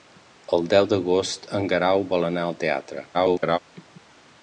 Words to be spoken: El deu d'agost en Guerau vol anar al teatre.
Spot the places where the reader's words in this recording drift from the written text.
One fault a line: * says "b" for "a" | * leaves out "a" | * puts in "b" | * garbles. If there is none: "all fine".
* garbles